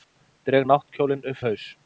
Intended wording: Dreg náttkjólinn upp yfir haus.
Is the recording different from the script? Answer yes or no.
yes